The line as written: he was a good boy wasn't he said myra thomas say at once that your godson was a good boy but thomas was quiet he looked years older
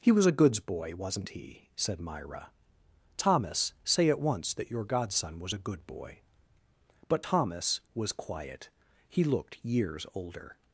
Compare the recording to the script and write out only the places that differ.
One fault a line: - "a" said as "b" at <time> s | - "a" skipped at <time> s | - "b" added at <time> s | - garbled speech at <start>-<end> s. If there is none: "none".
- "good" said as "goods" at 0.3 s